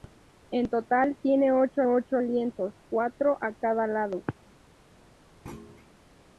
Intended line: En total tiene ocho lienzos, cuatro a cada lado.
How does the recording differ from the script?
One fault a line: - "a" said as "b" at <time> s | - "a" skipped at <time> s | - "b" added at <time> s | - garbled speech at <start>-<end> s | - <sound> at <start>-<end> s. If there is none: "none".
- "ocho" added at 1.8 s
- thud at 5.5-5.9 s